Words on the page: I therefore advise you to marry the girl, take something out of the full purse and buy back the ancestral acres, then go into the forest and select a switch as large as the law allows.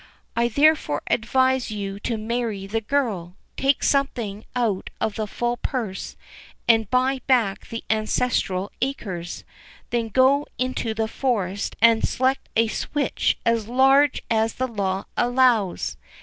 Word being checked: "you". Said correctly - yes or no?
yes